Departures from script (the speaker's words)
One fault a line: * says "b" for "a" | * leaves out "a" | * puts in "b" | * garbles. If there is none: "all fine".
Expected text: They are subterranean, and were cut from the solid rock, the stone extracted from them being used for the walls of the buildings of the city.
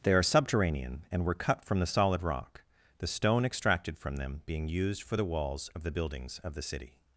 all fine